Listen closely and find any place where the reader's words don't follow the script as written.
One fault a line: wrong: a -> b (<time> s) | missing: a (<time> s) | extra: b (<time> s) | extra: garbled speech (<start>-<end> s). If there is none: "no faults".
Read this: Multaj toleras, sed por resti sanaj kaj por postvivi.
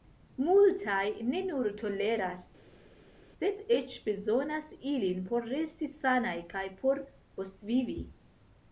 extra: ne nur (1.3 s)
extra: eĉ bezonas ilin (3.8 s)